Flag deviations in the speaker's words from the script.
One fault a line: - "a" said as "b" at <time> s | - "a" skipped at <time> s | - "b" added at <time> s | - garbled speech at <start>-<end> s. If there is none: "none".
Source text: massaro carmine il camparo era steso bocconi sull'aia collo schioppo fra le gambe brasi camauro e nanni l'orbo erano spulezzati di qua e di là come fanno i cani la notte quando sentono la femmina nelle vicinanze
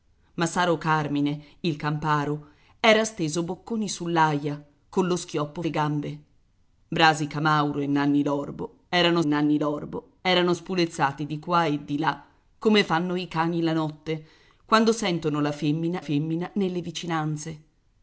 - "fra" skipped at 5.6 s
- "nanni l'orbo erano" added at 9.2 s
- "femmina" added at 16.0 s